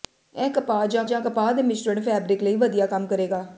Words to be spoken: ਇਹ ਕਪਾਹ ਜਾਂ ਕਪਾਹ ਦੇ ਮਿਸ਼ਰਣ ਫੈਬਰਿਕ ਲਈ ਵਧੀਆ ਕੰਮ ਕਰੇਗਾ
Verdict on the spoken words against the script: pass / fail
fail